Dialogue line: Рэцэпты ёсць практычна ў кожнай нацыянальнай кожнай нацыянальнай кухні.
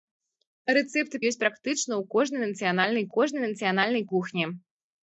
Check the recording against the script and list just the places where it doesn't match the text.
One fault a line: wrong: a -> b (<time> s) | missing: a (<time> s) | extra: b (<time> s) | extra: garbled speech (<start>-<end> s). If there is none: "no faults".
no faults